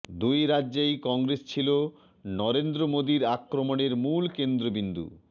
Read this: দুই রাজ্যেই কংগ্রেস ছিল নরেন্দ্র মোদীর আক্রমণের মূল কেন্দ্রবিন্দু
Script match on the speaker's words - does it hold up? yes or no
yes